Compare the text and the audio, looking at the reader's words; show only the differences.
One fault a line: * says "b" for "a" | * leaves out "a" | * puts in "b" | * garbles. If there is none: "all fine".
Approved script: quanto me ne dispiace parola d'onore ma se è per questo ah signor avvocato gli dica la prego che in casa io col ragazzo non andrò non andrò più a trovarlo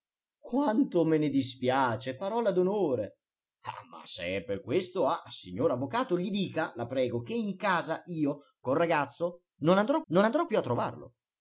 all fine